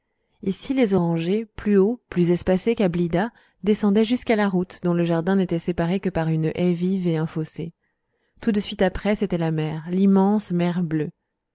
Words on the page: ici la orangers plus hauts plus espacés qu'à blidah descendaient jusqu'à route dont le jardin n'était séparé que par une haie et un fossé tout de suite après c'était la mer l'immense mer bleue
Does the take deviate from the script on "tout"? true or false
false